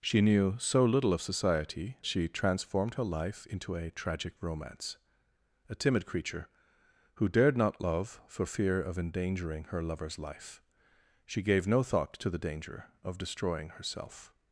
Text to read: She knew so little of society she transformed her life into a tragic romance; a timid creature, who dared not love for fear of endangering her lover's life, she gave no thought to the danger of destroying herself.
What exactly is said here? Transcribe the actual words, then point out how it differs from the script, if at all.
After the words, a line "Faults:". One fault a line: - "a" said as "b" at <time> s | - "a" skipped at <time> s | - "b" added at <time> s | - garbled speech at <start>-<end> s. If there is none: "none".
She knew so little of society she transformed her life into a tragic romance; a timid creature, who dared not love for fear of endangering her lover's life, she gave no thought to the danger of destroying herself.
Faults:
none